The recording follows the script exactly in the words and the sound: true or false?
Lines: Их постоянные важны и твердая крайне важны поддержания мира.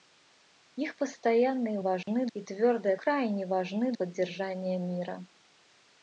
false